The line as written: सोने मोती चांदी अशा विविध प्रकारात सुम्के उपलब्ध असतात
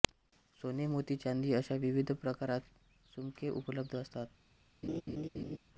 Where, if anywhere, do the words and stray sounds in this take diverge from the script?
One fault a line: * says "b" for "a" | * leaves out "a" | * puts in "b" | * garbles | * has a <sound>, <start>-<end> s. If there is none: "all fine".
* has a laugh, 4.8-5.6 s